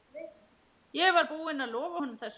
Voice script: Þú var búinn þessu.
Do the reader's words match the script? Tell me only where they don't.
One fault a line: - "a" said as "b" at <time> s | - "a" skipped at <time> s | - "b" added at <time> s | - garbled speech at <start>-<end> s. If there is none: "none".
- "Þú" said as "Ég" at 1.0 s
- "að lofa honum" added at 1.6 s